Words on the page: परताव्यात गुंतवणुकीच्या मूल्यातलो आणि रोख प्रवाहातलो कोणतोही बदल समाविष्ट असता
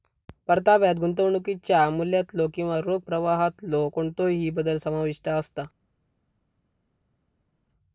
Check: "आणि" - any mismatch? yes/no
yes